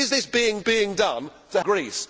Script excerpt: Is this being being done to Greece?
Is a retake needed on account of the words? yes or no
no